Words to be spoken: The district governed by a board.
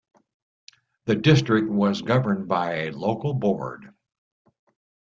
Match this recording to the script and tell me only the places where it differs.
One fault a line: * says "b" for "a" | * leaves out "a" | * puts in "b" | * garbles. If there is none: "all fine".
* puts in "was"
* puts in "local"